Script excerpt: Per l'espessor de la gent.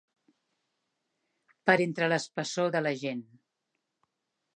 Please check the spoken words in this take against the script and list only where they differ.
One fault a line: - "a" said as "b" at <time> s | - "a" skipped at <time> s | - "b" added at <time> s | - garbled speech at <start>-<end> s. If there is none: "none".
- "entre" added at 1.9 s